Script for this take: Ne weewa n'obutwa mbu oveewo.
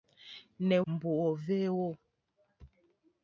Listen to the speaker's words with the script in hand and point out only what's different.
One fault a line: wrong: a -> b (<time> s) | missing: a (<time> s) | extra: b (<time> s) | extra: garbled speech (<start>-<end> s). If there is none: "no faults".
missing: weewa n'obutwa (0.8 s)